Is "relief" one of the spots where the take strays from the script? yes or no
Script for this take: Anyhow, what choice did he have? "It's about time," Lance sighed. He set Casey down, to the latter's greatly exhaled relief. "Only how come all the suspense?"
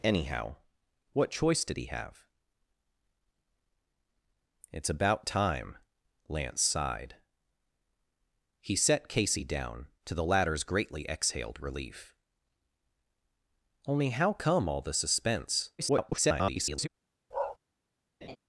no